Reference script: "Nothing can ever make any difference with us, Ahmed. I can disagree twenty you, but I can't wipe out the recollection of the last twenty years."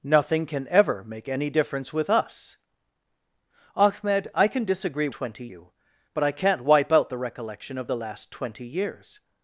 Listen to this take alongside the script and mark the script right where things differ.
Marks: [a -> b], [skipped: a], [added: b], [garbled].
"Nothing can ever make any difference with us, Ahmed. I can disagree twenty you, but I can't wipe out the recollection of the last twenty years."